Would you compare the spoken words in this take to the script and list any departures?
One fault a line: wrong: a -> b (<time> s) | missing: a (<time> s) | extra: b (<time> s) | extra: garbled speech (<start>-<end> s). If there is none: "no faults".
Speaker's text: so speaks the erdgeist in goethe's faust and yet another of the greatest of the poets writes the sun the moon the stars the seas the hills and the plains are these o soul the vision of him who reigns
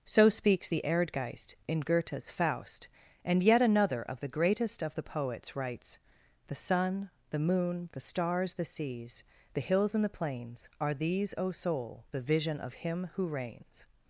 no faults